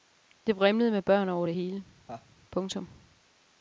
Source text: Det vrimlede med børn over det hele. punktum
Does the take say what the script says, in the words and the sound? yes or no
no